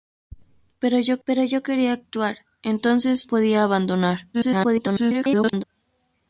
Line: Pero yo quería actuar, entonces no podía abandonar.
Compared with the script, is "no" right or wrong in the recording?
wrong